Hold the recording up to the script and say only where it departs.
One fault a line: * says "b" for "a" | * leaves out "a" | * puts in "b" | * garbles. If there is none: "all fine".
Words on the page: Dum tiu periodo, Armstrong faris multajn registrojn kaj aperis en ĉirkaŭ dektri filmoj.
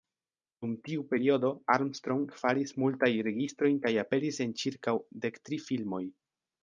all fine